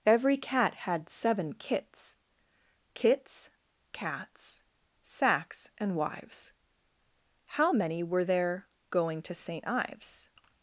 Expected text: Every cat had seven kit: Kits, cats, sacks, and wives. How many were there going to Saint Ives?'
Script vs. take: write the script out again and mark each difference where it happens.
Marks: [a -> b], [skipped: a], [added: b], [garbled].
Every cat had seven [kit: -> kits] Kits, cats, sacks, and wives. How many were there going to Saint Ives?'